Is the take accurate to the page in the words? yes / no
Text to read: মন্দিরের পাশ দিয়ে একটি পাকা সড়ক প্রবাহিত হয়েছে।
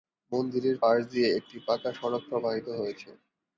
yes